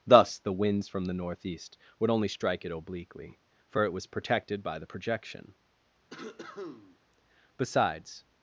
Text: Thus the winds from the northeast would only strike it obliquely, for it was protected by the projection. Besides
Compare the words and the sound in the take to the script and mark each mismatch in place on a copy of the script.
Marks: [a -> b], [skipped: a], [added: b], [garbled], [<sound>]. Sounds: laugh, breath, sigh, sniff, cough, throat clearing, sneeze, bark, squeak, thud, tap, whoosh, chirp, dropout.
Thus the winds from the northeast would only strike it obliquely, for it was protected by the projection. [cough] Besides